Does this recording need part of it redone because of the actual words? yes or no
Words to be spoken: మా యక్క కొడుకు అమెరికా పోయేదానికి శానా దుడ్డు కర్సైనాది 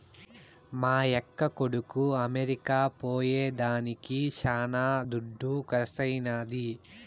no